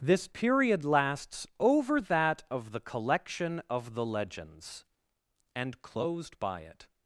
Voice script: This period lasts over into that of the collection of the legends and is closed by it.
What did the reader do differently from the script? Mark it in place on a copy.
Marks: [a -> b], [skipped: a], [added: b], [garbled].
This period lasts over [skipped: into] that of the collection of the legends and [skipped: is] closed by it.